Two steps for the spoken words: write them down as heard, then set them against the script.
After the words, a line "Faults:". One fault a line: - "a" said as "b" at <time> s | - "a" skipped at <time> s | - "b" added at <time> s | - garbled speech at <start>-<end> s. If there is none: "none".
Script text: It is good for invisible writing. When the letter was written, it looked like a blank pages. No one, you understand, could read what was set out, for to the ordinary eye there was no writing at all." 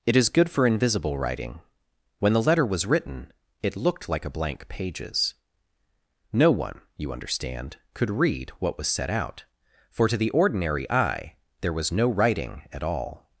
It is good for invisible writing. When the letter was written, it looked like a blank pages. No one, you understand, could read what was set out, for to the ordinary eye there was no writing at all."
Faults:
none